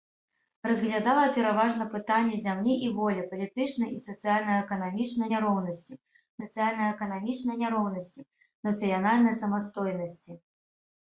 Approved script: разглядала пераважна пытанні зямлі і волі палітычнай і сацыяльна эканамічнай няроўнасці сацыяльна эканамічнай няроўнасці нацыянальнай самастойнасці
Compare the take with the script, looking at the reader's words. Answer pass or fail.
pass